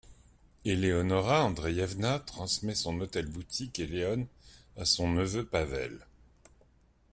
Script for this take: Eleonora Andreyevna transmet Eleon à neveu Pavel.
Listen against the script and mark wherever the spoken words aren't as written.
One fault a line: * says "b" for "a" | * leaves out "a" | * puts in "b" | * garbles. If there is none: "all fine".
* puts in "son hôtel boutique"
* puts in "son"